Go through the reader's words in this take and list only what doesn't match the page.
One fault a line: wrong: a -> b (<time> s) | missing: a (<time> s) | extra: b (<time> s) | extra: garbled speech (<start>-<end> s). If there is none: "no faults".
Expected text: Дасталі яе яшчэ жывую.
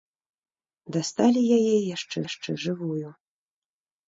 extra: яшчэ (2.3 s)